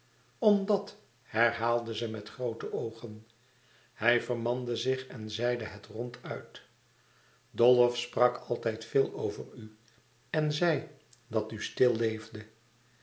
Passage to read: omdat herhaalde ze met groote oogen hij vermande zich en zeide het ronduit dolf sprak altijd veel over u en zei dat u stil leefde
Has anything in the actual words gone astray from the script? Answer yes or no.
no